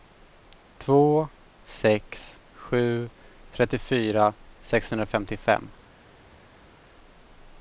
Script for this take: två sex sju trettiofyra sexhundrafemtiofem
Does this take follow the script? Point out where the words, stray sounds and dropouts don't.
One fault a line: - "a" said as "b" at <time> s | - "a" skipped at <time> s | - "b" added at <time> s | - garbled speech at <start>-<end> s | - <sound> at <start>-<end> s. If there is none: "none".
none